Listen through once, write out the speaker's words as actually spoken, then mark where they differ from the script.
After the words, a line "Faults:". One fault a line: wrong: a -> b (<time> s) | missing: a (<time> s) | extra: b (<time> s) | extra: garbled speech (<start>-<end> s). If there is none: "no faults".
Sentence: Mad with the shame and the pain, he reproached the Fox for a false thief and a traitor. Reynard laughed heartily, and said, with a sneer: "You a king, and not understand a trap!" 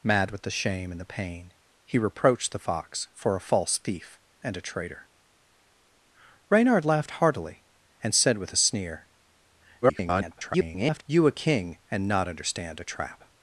Mad with the shame and the pain, he reproached the Fox for a false thief and a traitor. Reynard laughed heartily, and said, with a sneer: [garbled] "You a king, and not understand a trap!"
Faults:
extra: garbled speech (9.8-11.0 s)